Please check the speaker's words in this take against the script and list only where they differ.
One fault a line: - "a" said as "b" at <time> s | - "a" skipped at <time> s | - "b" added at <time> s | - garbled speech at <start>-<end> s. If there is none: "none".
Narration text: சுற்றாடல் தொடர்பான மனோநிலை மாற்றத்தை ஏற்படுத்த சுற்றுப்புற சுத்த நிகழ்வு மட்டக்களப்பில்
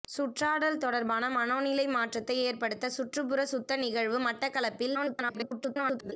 - garbled speech at 4.9-6.1 s